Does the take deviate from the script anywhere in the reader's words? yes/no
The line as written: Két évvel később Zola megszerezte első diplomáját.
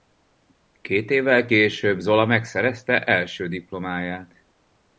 no